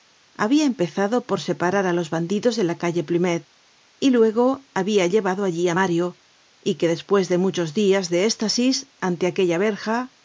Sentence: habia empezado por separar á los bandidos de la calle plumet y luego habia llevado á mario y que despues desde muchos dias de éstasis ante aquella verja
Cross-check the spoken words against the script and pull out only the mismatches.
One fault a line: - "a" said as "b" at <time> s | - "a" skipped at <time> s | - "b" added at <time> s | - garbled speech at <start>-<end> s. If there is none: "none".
- "allí" added at 5.5 s
- "desde" said as "de" at 7.3 s